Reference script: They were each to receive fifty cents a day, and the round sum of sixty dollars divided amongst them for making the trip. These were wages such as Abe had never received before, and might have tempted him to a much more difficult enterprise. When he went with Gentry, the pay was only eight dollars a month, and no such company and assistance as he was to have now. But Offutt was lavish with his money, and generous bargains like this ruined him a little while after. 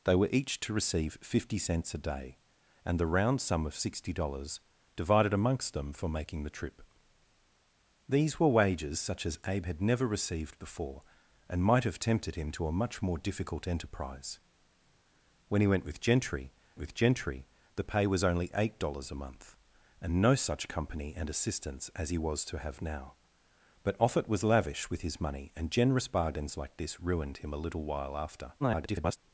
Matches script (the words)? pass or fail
fail